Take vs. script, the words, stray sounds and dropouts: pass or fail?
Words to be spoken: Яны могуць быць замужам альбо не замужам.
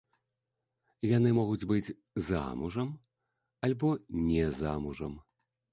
pass